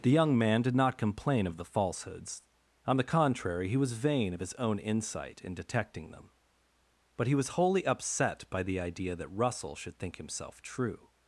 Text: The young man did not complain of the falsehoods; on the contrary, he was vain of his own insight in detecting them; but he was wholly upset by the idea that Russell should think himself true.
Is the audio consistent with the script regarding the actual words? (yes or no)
yes